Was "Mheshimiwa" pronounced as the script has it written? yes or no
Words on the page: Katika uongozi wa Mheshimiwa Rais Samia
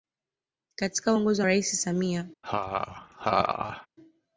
no